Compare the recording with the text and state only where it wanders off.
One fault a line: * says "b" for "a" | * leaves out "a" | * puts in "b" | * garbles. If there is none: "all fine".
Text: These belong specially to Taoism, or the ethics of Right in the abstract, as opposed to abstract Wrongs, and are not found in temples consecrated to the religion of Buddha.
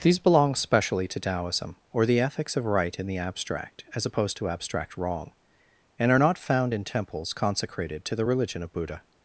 * says "Wrong" for "Wrongs"